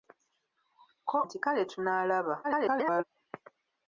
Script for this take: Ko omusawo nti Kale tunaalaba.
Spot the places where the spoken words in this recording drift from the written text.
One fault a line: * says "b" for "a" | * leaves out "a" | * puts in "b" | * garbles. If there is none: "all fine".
* leaves out "omusawo"
* garbles